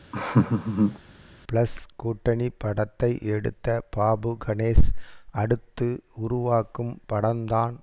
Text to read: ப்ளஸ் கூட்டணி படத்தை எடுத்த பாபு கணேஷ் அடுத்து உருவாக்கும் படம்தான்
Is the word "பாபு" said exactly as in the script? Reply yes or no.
yes